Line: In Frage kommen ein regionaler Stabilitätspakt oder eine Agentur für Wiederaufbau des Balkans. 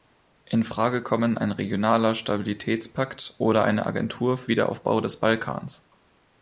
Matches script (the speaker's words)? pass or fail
pass